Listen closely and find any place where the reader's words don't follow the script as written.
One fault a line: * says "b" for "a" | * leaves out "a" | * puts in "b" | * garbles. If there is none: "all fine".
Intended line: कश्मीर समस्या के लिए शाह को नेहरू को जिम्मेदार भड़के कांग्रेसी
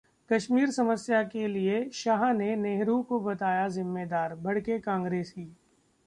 * says "ने" for "को"
* puts in "बताया"